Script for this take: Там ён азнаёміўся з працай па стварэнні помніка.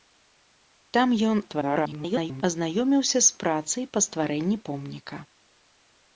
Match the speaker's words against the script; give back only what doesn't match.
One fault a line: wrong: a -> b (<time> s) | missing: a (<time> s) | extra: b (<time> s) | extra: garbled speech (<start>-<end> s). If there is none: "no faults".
extra: garbled speech (1.5-2.4 s)